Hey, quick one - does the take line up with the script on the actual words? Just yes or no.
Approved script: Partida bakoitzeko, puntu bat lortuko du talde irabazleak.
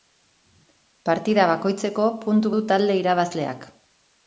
no